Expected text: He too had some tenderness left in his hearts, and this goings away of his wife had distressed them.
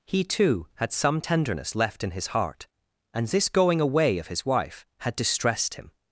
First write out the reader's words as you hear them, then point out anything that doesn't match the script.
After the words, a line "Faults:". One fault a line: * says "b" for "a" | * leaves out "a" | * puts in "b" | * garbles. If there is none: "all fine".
He too had some tenderness left in his heart, and this going away of his wife had distressed him.
Faults:
* says "heart" for "hearts"
* says "going" for "goings"
* says "him" for "them"